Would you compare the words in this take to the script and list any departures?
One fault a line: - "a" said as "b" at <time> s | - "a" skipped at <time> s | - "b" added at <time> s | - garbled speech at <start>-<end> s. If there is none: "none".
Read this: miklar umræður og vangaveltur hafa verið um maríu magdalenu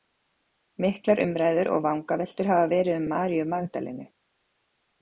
none